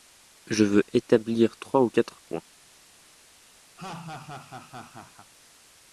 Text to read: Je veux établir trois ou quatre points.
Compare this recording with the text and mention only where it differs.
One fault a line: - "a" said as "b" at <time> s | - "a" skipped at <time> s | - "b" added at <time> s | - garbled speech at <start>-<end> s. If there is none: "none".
none